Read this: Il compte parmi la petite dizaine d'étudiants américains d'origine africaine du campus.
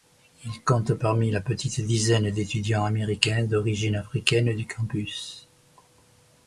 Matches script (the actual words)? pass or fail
pass